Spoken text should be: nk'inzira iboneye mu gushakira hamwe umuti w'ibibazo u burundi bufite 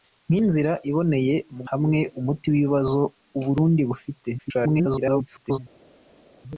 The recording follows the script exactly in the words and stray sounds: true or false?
false